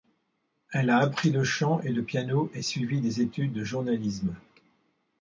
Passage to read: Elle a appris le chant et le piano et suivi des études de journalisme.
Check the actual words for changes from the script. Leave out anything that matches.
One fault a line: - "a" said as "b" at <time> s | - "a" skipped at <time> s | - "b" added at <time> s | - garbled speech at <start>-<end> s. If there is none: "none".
none